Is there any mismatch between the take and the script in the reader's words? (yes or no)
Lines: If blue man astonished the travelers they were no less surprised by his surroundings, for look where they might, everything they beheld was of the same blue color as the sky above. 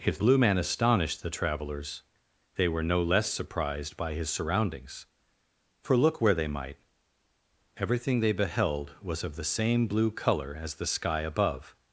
no